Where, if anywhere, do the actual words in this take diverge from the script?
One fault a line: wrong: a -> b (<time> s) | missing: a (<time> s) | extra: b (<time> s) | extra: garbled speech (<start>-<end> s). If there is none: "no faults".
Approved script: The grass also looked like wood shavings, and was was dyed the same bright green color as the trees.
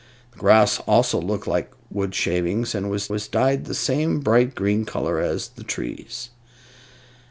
no faults